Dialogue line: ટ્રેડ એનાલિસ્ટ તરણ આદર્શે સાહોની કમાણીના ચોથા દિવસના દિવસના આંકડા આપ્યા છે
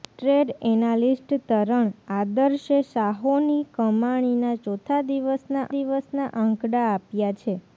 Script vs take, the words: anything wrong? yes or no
no